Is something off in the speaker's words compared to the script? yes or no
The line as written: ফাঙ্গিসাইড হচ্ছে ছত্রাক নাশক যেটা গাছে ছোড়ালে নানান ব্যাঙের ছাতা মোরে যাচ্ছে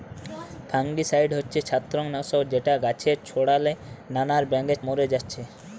yes